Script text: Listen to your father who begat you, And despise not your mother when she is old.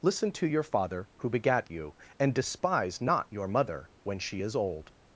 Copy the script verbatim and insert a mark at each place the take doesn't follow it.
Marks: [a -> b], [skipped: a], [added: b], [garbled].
Listen to your father who begat you, And despise not your mother when she is old.